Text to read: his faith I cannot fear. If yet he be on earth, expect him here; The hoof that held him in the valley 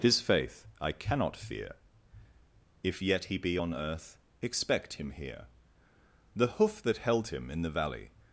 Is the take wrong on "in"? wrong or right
right